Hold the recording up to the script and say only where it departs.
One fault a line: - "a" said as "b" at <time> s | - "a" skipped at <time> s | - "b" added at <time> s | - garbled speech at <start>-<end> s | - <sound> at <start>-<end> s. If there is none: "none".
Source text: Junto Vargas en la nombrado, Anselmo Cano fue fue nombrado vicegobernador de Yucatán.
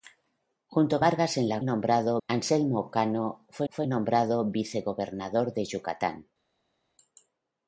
none